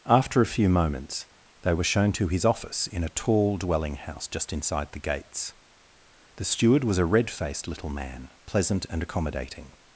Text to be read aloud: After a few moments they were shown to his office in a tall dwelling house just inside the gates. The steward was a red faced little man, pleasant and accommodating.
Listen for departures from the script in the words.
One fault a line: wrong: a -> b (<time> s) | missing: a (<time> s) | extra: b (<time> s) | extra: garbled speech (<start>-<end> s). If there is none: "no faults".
no faults